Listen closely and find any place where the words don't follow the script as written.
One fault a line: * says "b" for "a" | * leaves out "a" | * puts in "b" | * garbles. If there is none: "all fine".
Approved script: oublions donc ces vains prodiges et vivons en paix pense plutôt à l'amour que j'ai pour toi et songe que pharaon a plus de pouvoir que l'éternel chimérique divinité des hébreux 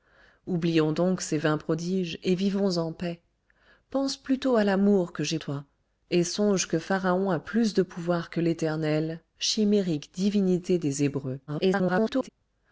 * leaves out "pour"
* garbles